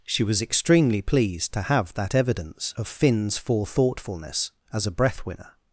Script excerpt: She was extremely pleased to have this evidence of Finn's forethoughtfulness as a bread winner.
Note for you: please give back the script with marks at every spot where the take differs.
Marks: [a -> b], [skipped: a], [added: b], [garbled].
She was extremely pleased to have [this -> that] evidence of Finn's forethoughtfulness as a [bread -> breath] winner.